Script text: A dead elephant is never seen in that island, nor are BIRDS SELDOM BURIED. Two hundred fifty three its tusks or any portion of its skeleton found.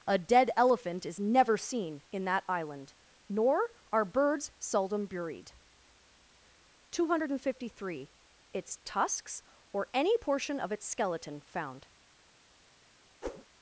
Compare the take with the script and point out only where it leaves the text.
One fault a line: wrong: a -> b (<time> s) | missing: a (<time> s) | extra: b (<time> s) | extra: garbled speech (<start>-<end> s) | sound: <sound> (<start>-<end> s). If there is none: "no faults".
sound: whoosh (13.2-13.4 s)